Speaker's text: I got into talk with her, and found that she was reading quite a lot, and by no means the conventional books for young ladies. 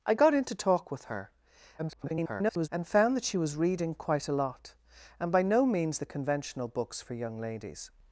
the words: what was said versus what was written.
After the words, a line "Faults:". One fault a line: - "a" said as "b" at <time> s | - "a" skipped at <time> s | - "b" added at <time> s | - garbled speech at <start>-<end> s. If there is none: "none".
I got into talk with her, [garbled] and found that she was reading quite a lot, and by no means the conventional books for young ladies.
Faults:
- garbled speech at 1.8-2.7 s